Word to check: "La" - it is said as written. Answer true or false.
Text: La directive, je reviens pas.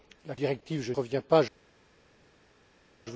true